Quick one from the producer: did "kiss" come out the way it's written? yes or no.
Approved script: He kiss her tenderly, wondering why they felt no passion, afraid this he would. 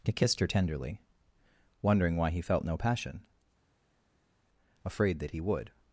no